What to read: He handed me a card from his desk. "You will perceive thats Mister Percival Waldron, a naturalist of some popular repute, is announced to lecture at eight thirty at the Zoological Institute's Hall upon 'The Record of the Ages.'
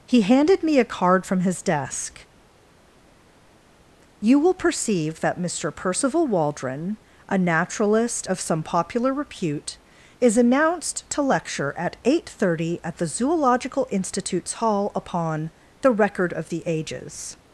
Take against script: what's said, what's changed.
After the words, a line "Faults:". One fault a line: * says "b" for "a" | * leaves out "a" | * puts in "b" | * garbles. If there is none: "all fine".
He handed me a card from his desk. "You will perceive that Mister Percival Waldron, a naturalist of some popular repute, is announced to lecture at eight thirty at the Zoological Institute's Hall upon 'The Record of the Ages.'
Faults:
* says "that" for "thats"